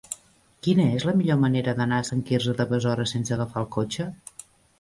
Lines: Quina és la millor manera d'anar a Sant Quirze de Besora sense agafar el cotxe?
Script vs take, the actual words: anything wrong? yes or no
no